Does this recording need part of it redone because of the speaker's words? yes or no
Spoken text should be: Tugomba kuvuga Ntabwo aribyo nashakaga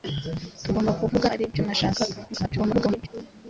yes